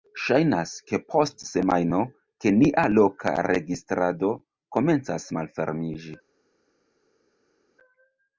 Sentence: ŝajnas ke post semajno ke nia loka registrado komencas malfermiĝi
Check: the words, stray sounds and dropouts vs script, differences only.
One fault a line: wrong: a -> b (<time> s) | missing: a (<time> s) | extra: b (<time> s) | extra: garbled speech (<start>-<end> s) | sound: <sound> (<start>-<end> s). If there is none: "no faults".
no faults